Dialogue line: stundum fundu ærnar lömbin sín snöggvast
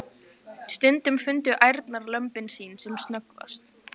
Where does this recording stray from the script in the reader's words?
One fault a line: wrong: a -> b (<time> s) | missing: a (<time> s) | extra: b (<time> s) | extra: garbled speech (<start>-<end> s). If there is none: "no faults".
extra: sem (2.9 s)